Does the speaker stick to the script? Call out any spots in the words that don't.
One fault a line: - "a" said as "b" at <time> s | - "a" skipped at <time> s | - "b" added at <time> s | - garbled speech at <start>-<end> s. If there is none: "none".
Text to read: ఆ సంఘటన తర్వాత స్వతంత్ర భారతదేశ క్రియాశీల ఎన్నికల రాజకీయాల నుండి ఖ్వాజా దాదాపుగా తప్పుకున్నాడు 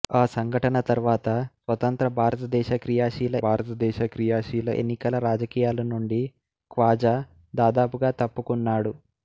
- "భారతదేశ క్రియాశీల" added at 3.4 s